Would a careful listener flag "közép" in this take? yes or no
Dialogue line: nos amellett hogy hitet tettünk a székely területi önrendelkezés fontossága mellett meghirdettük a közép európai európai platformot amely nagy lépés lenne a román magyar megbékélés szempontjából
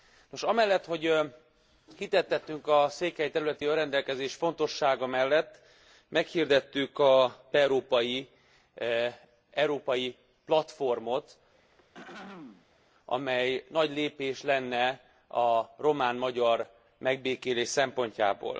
yes